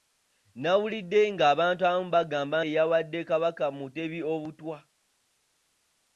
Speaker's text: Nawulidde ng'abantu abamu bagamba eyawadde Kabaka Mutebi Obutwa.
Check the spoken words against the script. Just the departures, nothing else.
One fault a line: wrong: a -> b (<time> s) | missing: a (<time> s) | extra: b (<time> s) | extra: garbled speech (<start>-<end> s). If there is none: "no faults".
no faults